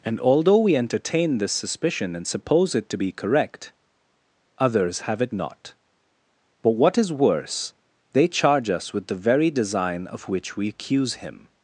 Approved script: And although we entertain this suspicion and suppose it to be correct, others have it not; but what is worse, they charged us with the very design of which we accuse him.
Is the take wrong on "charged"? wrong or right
wrong